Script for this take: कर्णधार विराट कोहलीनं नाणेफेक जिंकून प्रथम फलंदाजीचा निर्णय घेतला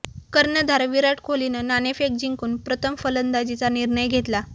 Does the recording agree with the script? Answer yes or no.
yes